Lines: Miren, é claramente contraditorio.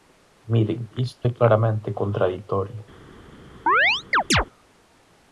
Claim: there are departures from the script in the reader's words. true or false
true